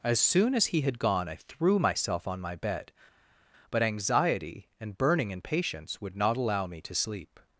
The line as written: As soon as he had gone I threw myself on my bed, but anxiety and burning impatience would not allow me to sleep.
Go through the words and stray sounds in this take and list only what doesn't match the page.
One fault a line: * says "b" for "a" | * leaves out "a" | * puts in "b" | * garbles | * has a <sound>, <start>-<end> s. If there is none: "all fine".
all fine